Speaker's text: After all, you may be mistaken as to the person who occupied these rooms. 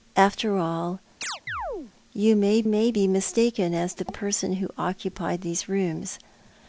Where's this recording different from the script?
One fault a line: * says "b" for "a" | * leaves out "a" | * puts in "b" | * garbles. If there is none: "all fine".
* puts in "may"
* leaves out "to"